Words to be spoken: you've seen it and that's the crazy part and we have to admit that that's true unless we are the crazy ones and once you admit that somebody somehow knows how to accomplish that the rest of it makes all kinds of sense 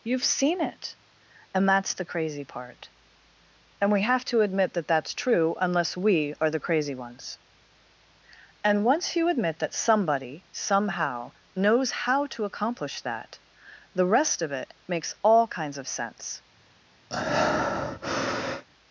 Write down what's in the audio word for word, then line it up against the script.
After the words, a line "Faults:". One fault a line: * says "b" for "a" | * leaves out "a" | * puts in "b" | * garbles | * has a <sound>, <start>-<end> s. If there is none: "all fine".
you've seen it and that's the crazy part and we have to admit that that's true unless we are the crazy ones and once you admit that somebody somehow knows how to accomplish that the rest of it makes all kinds of sense
Faults:
* has a breath, 17.1-18.7 s